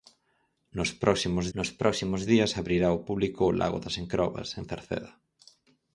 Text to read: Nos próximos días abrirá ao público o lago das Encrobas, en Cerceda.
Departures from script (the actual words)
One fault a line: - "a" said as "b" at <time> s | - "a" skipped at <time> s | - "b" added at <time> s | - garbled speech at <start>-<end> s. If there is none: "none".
- "nos próximos" added at 1.6 s